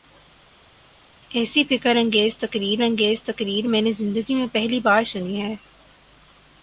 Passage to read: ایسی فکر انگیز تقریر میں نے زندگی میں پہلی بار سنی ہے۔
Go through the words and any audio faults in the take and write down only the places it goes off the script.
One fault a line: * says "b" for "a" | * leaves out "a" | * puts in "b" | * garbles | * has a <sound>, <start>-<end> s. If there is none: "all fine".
* puts in "انگیز تقریر"